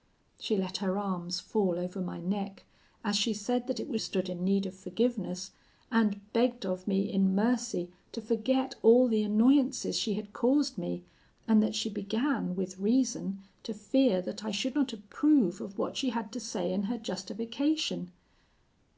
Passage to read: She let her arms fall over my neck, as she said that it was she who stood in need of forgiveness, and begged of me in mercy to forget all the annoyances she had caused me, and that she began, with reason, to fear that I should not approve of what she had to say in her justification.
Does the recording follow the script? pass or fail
fail